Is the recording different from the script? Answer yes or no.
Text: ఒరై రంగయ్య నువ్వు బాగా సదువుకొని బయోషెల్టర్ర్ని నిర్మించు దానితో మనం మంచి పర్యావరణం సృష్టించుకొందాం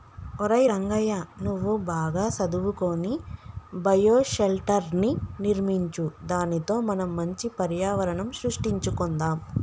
no